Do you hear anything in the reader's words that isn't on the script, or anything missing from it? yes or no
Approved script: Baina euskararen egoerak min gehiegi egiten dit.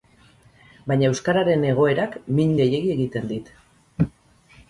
no